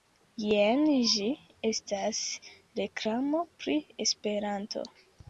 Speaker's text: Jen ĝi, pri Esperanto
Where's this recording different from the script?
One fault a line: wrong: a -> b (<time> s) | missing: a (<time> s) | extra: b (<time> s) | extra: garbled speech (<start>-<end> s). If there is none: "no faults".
extra: estas reklamo (1.7 s)